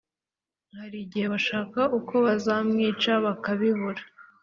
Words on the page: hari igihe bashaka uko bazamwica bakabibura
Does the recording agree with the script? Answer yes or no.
yes